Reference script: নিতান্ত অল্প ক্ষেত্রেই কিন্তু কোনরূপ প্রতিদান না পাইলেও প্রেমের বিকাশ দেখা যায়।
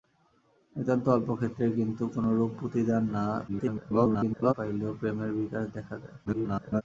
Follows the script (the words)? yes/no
no